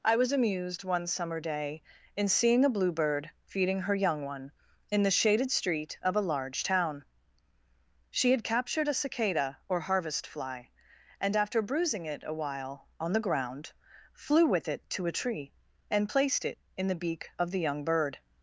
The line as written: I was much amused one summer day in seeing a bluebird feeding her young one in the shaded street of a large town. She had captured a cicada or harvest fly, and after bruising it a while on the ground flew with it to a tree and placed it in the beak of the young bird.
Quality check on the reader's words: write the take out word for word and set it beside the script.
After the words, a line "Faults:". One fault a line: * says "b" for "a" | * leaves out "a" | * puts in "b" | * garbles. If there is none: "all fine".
I was amused one summer day in seeing a bluebird feeding her young one in the shaded street of a large town. She had captured a cicada or harvest fly, and after bruising it a while on the ground flew with it to a tree and placed it in the beak of the young bird.
Faults:
* leaves out "much"